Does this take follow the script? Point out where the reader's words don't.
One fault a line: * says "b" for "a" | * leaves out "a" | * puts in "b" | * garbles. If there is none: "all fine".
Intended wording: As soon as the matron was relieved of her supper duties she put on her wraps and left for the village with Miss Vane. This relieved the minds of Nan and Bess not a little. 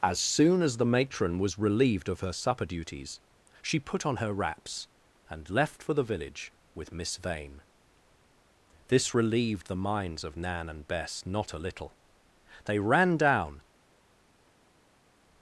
* puts in "They ran down"